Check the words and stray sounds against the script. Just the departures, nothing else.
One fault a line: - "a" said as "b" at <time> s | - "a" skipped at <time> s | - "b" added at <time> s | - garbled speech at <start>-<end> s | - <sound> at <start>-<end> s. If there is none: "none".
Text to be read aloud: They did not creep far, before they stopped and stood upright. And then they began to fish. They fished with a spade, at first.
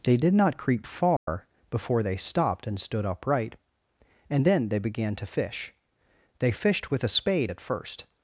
- dropout at 1.2-1.3 s